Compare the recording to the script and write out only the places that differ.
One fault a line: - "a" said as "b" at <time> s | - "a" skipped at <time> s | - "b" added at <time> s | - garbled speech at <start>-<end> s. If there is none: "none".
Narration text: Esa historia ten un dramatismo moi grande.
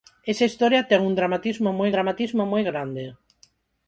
- "dramatismo moi" added at 1.9 s